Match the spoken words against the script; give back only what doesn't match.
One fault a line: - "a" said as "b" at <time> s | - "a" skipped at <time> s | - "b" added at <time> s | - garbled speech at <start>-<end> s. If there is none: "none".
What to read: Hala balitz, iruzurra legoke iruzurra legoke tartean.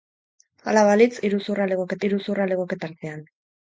none